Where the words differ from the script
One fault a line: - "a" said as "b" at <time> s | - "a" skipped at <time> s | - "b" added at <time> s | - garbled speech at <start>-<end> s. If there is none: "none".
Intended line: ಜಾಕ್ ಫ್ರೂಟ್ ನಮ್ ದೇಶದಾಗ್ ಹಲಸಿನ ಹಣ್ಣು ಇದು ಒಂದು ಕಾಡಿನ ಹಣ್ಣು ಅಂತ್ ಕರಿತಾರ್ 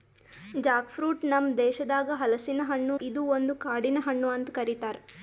none